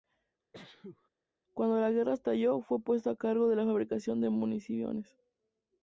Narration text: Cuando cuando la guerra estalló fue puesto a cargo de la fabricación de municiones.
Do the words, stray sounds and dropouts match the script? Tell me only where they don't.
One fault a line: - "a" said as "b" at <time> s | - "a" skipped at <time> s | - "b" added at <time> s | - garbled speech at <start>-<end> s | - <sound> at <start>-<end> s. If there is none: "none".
- sneeze at 0.5-1.1 s
- "cuando" skipped at 1.8 s